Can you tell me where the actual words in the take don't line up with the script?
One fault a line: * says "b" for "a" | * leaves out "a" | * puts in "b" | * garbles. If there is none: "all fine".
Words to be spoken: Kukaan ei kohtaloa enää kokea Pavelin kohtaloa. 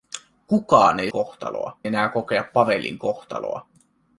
all fine